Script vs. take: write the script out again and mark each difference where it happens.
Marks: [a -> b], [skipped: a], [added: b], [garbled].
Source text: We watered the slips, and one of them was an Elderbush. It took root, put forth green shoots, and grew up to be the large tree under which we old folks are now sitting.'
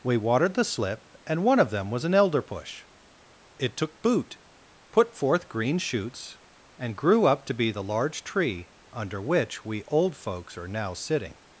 We watered the [slips, -> slip] and one of them was an Elderbush. It took [root, -> boot] put forth green shoots, and grew up to be the large tree under which we old folks are now sitting.'